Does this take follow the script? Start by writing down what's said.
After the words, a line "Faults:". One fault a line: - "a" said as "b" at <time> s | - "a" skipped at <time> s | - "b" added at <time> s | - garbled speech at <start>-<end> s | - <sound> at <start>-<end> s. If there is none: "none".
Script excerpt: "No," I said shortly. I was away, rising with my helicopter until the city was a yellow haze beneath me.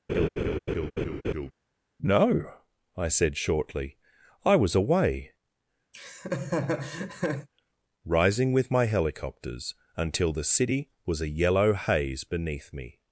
"No," I said shortly. I was away, rising with my helicopters until the city was a yellow haze beneath me.
Faults:
- laugh at 0.1-1.5 s
- laugh at 5.9-7.5 s
- "helicopter" said as "helicopters" at 8.9 s